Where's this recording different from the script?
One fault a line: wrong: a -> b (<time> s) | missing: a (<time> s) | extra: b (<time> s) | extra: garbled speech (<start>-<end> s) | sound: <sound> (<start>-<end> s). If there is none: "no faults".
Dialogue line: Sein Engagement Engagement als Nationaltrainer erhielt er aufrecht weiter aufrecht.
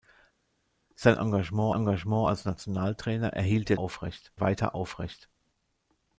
no faults